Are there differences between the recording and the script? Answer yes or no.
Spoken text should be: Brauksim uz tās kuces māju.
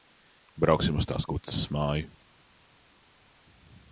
no